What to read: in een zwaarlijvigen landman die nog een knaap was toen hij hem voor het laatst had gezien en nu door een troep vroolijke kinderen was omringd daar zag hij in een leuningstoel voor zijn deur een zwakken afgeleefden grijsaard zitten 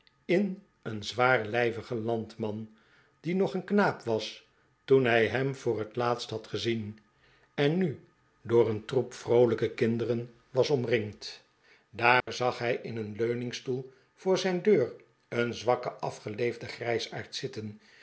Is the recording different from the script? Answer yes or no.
no